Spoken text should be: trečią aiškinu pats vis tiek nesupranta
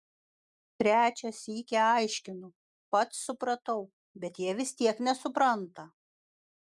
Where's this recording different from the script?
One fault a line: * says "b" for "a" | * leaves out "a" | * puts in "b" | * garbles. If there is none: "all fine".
* puts in "sykį"
* puts in "supratau bet jie"